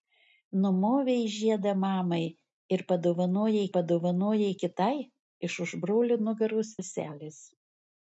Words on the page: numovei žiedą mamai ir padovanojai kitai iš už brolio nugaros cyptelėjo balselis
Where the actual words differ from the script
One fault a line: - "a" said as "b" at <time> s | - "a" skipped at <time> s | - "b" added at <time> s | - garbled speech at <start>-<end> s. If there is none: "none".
- "padovanojai" added at 3.8 s
- "cyptelėjo" skipped at 6.8 s